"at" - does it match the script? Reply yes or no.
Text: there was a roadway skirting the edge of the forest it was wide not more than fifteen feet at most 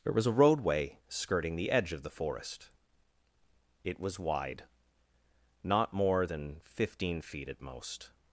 yes